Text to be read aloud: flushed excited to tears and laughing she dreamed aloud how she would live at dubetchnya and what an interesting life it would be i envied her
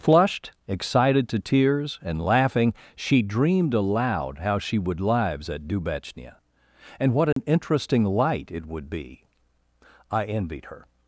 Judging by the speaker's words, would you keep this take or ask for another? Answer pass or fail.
fail